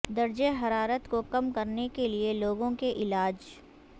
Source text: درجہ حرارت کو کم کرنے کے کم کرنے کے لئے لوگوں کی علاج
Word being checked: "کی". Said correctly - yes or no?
no